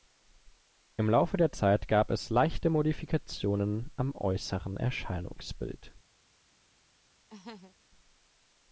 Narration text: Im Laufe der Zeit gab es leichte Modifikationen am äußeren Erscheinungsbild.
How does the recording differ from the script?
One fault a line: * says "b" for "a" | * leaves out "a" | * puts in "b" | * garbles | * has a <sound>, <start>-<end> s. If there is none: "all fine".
* has a laugh, 7.3-7.8 s